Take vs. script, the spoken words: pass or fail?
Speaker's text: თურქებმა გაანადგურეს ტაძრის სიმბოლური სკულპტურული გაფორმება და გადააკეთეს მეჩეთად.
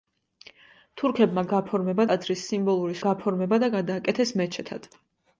fail